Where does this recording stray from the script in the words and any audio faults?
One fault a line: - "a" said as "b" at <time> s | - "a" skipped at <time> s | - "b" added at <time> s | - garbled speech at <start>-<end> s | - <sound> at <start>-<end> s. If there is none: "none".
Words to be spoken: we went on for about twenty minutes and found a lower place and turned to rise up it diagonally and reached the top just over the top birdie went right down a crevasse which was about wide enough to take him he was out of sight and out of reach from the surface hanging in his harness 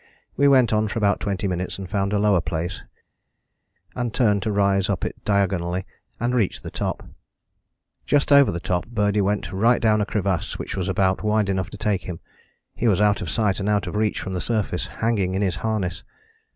none